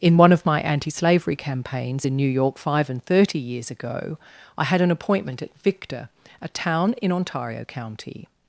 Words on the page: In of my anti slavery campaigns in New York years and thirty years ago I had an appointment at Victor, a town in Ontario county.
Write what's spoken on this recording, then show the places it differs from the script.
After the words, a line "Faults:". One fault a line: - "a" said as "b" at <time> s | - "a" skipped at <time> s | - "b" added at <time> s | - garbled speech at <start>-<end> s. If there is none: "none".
In one of my anti slavery campaigns in New York five and thirty years ago I had an appointment at Victor, a town in Ontario county.
Faults:
- "one" added at 0.2 s
- "years" said as "five" at 2.6 s